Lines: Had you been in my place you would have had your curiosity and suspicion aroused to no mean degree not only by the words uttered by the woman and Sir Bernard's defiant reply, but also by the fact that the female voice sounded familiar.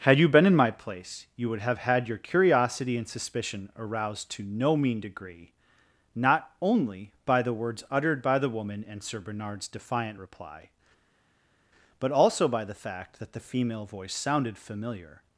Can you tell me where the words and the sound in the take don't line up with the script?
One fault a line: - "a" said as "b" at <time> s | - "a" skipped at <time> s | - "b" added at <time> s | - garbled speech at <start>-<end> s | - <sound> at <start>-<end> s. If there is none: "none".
none